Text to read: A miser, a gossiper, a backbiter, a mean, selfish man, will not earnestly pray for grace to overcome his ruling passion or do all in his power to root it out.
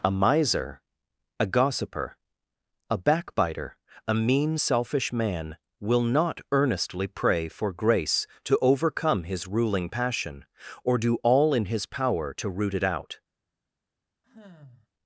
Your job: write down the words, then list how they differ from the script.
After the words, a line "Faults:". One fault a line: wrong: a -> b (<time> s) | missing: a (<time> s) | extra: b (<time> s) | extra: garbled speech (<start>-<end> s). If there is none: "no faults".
A miser, a gossiper, a backbiter, a mean, selfish man, will not earnestly pray for grace to overcome his ruling passion or do all in his power to root it out.
Faults:
no faults